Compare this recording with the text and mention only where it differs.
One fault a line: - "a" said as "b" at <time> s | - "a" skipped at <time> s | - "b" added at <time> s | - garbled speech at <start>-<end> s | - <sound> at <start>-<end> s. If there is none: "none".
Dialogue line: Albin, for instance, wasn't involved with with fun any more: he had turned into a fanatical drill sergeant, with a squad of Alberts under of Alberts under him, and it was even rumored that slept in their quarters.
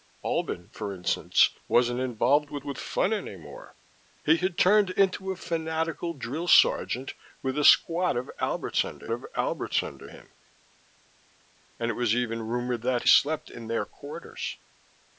none